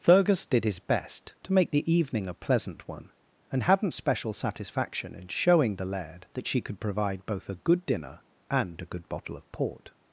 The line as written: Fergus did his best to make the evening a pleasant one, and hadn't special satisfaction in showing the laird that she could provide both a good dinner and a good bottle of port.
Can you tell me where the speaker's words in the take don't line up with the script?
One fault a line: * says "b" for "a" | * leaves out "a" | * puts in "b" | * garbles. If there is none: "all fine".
all fine